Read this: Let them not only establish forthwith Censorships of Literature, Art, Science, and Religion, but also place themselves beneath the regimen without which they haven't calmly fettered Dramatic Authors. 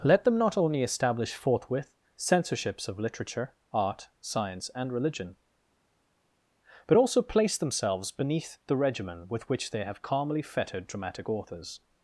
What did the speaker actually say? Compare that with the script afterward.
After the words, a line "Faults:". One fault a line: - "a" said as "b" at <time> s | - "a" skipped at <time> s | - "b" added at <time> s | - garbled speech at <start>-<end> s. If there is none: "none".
Let them not only establish forthwith Censorships of Literature, Art, Science, and Religion, but also place themselves beneath the regimen with which they have calmly fettered Dramatic Authors.
Faults:
- "without" said as "with" at 9.3 s
- "haven't" said as "have" at 9.8 s